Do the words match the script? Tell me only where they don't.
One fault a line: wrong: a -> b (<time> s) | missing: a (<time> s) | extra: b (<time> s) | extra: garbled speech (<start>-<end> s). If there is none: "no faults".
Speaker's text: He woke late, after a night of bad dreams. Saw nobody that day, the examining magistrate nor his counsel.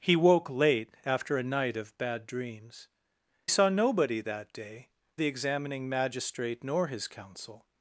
no faults